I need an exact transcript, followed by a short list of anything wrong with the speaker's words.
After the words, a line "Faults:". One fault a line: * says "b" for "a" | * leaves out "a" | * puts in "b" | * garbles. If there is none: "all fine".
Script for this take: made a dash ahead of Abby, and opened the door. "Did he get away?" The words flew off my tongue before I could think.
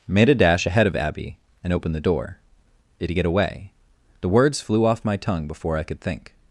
made a dash ahead of Abby, and opened the door. "Did he get away?" The words flew off my tongue before I could think.
Faults:
all fine